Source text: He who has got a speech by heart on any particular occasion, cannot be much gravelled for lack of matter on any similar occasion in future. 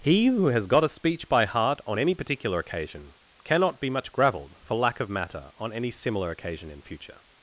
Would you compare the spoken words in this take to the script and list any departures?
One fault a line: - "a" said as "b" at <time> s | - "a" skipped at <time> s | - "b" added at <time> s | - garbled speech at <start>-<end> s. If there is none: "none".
none